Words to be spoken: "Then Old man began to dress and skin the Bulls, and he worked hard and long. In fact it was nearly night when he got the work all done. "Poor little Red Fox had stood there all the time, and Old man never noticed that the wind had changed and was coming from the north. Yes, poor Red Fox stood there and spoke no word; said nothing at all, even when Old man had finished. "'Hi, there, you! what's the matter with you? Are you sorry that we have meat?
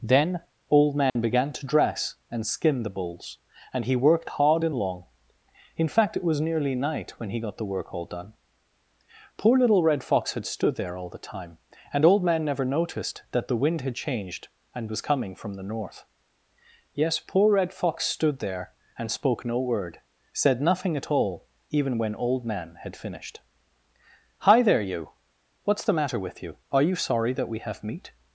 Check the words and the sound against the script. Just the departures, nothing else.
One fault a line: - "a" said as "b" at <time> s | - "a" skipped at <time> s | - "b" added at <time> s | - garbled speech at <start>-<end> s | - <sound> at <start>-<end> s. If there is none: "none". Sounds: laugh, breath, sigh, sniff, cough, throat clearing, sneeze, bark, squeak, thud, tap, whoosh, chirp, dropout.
- dropout at 1.1-1.2 s